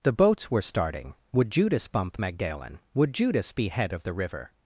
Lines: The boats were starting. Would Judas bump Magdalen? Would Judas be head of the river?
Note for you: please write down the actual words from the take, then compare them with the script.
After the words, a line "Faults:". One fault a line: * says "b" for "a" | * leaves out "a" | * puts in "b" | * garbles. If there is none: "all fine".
The boats were starting. Would Judas bump Magdalen? Would Judas be head of the river?
Faults:
all fine